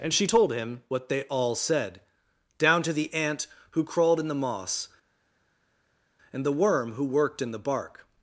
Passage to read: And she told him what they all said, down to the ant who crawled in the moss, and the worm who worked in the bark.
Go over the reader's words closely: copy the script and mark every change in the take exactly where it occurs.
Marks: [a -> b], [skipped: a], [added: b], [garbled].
And she told him what they all said, down to the ant who crawled in the moss, and the worm who worked in the bark.